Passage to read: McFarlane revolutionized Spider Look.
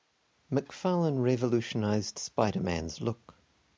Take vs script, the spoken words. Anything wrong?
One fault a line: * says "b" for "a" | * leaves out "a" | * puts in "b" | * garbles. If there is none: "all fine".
* puts in "Man's"